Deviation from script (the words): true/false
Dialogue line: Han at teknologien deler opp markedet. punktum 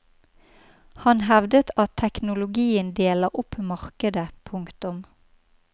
true